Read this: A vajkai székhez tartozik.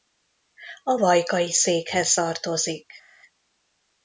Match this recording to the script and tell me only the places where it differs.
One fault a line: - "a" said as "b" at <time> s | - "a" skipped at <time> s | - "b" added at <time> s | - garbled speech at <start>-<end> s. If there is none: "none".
none